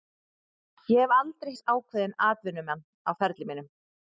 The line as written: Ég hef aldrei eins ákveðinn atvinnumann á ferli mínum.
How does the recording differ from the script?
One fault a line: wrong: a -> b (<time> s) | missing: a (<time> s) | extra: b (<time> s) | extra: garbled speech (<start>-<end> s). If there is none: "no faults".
no faults